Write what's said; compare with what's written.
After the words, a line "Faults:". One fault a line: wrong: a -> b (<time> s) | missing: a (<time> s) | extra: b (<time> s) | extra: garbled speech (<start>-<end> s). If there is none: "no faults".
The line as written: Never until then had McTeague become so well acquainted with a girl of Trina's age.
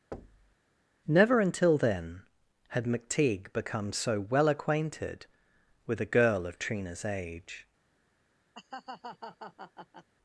Never until then had McTeague become so well acquainted with a girl of Trina's age.
Faults:
no faults